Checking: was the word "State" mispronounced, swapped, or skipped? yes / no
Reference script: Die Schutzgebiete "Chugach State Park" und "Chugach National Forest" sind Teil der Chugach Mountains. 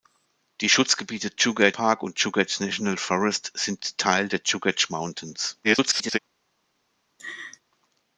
yes